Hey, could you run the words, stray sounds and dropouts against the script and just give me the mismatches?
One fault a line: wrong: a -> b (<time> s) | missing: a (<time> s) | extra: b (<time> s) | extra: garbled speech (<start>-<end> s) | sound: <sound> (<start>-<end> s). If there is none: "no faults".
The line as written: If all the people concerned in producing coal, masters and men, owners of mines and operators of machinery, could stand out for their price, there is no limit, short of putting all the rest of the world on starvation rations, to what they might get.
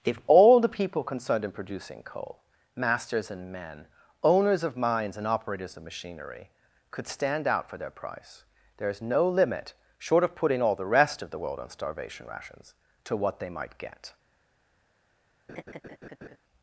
sound: laugh (15.5-16.4 s)